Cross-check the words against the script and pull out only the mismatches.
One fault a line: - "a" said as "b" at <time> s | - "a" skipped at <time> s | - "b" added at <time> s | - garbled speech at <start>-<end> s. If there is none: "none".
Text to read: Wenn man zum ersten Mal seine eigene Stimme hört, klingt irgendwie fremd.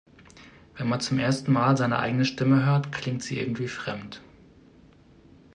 - "sie" added at 3.2 s